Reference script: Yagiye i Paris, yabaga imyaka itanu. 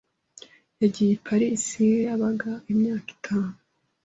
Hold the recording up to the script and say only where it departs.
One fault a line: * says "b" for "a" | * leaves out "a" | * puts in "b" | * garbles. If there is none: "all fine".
all fine